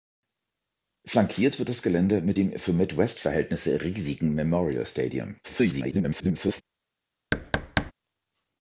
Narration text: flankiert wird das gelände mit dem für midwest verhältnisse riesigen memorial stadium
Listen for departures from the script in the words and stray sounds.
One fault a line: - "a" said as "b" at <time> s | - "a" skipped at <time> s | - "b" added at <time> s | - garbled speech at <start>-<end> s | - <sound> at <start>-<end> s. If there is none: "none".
- garbled speech at 5.4-6.6 s
- thud at 7.3-7.9 s